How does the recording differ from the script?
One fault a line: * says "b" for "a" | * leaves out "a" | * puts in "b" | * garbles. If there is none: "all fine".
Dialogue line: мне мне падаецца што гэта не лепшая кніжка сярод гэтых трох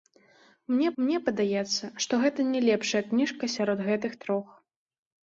all fine